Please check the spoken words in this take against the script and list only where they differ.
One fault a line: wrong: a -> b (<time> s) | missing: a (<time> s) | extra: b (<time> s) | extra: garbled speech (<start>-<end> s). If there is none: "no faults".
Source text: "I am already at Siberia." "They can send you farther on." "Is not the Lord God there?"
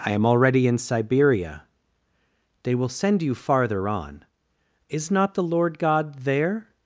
wrong: at -> in (0.7 s)
wrong: can -> will (2.7 s)